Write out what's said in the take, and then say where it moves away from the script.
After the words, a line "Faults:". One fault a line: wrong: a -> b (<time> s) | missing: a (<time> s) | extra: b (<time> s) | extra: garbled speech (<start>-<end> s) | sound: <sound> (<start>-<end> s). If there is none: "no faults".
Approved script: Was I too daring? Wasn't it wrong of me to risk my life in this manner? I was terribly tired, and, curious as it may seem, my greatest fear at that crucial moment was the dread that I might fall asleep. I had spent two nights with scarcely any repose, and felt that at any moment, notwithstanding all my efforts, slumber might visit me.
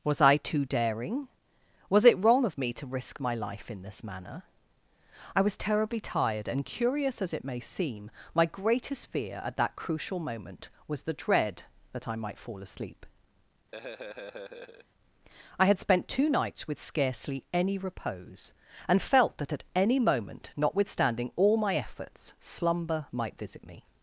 Was I too daring? Was it wrong of me to risk my life in this manner? I was terribly tired, and, curious as it may seem, my greatest fear at that crucial moment was the dread that I might fall asleep. I had spent two nights with scarcely any repose, and felt that at any moment, notwithstanding all my efforts, slumber might visit me.
Faults:
wrong: Wasn't -> Was (1.9 s)
sound: laugh (13.7-14.9 s)